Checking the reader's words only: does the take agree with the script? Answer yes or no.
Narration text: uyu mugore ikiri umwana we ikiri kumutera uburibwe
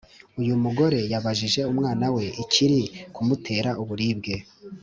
no